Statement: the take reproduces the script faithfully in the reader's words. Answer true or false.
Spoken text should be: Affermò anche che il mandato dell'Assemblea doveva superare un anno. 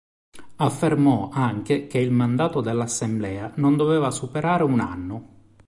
false